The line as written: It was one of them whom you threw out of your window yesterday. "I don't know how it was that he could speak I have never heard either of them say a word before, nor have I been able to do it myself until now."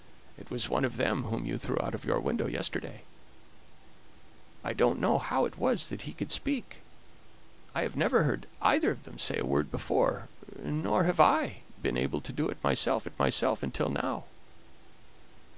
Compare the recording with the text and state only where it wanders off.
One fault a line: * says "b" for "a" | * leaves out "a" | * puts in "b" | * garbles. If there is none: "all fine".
* puts in "it myself"